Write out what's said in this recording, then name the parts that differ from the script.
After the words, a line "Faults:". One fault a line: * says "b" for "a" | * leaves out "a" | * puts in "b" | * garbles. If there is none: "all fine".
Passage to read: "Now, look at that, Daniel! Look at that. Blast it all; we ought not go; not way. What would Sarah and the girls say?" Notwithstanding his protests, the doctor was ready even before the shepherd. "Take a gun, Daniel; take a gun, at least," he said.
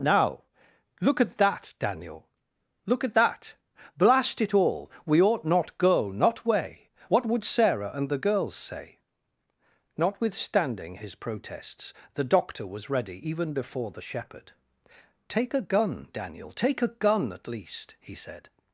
"Now, look at that, Daniel! Look at that. Blast it all; we ought not go; not way. What would Sarah and the girls say?" Notwithstanding his protests, the doctor was ready even before the shepherd. "Take a gun, Daniel; take a gun, at least," he said.
Faults:
all fine